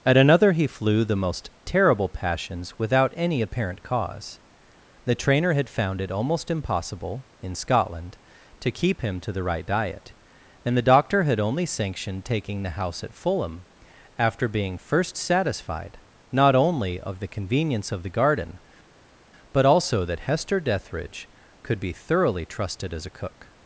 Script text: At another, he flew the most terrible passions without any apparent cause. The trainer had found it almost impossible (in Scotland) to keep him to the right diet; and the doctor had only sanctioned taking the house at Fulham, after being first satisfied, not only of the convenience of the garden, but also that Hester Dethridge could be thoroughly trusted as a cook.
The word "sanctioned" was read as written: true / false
true